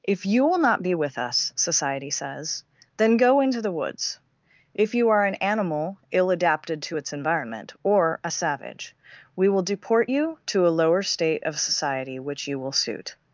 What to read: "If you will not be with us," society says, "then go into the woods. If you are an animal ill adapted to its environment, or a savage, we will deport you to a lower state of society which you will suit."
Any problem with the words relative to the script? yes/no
no